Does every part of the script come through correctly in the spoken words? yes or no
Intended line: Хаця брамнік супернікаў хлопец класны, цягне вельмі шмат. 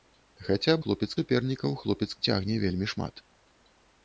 no